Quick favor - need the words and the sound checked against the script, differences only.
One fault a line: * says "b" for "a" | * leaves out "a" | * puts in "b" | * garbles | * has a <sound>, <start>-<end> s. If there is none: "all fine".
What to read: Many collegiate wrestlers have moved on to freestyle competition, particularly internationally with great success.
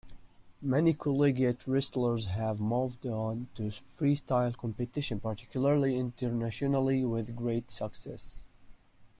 all fine